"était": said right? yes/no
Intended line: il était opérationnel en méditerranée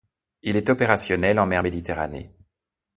no